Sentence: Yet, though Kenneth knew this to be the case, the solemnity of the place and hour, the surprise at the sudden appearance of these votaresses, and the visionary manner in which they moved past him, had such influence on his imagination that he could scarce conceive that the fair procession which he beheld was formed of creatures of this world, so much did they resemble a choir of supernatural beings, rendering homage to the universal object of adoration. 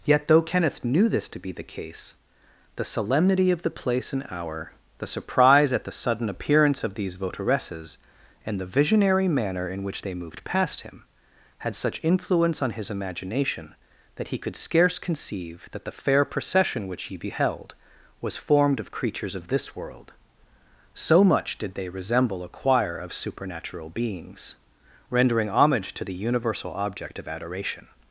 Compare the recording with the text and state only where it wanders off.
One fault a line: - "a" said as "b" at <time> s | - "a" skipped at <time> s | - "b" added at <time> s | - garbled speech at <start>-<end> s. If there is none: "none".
none